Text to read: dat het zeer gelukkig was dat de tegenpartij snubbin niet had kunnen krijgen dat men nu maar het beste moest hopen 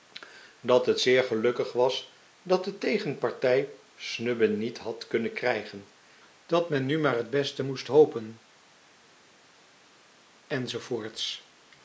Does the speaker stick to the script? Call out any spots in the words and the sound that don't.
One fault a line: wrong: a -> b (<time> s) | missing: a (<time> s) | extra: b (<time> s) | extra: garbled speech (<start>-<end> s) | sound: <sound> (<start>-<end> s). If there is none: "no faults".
no faults